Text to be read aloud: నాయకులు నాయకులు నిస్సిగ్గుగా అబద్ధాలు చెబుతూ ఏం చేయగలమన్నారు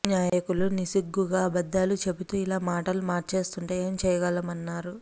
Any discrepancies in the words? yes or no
yes